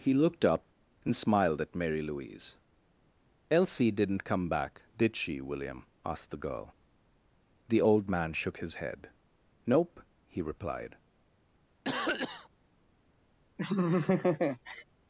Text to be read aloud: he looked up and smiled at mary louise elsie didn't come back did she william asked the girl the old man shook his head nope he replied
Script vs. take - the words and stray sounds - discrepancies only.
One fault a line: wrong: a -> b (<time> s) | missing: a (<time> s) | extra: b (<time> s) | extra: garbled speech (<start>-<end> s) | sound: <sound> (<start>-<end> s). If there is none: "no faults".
sound: cough (11.8-12.5 s)
sound: laugh (13.6-14.8 s)